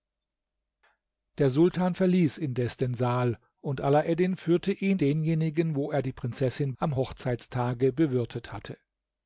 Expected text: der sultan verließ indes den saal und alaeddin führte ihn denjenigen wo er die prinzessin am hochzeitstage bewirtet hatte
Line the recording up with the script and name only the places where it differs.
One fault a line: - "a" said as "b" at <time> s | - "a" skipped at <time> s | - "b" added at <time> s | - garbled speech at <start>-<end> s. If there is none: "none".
none